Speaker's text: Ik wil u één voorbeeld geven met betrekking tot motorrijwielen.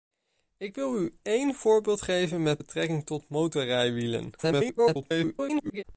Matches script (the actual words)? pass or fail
fail